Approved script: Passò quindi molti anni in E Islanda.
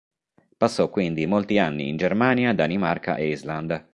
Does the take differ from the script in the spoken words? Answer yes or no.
yes